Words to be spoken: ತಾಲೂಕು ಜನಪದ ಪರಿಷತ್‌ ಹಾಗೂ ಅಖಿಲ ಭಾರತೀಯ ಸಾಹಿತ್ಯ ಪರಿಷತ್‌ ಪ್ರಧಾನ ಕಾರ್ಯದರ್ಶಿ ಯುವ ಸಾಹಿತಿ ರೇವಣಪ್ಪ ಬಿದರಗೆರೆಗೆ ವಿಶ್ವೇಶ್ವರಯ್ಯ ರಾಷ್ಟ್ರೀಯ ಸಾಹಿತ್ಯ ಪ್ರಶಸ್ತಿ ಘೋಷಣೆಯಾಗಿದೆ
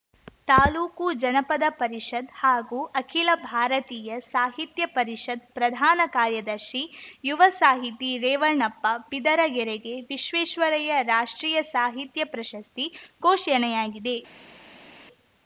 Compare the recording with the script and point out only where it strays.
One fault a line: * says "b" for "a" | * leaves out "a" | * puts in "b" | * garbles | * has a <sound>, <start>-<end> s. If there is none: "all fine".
all fine